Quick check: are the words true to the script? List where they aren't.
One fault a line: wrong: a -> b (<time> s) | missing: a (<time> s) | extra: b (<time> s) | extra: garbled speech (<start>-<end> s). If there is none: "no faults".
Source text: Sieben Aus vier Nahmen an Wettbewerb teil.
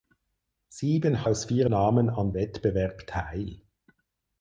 no faults